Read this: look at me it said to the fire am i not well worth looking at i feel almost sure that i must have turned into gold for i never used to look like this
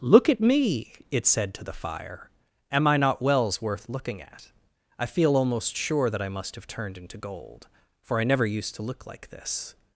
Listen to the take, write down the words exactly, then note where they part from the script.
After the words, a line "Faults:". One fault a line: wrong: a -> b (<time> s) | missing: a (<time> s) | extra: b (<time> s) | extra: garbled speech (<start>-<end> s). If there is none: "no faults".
look at me it said to the fire am i not wells worth looking at i feel almost sure that i must have turned into gold for i never used to look like this
Faults:
wrong: well -> wells (3.2 s)